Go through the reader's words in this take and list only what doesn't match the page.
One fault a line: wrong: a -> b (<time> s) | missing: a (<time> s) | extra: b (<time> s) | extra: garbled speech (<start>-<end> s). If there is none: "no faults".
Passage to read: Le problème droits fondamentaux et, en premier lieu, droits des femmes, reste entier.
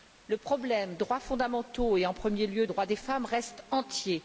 no faults